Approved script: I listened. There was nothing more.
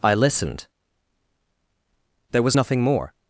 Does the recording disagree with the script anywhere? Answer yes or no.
no